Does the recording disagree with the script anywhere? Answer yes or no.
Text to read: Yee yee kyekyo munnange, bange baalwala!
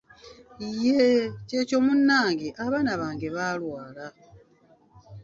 yes